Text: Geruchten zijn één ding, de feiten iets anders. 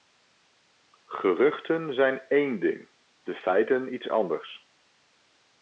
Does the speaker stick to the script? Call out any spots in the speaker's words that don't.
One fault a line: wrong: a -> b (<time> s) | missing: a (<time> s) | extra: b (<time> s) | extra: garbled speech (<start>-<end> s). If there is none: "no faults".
no faults